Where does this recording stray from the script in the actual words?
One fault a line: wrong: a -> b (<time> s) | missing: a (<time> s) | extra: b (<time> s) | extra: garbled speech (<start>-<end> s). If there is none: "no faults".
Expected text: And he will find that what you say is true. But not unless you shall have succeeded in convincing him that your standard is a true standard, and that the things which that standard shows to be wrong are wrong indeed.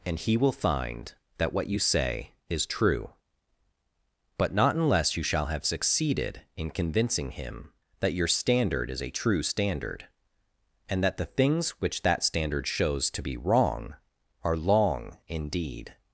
wrong: wrong -> long (14.6 s)